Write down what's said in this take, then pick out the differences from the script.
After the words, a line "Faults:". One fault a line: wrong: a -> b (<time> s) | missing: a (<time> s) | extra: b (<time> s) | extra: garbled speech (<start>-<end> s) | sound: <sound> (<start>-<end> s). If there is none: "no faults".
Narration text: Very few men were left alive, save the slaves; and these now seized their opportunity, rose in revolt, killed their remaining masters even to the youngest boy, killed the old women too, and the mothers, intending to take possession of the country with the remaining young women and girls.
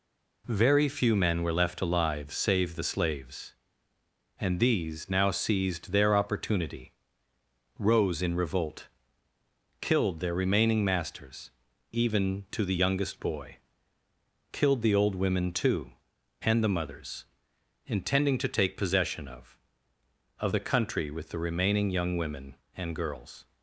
Very few men were left alive, save the slaves; and these now seized their opportunity, rose in revolt, killed their remaining masters even to the youngest boy, killed the old women too, and the mothers, intending to take possession of of the country with the remaining young women and girls.
Faults:
extra: of (20.4 s)